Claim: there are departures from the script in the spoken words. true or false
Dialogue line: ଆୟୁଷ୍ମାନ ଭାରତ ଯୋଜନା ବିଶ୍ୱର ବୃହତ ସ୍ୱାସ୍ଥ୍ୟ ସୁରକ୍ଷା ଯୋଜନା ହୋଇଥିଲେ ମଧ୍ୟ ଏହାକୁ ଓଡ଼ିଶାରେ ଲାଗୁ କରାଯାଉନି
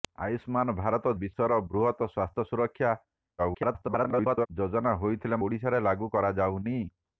true